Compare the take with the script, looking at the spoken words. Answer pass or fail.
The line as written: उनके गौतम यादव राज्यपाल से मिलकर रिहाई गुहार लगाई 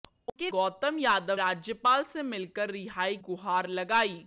pass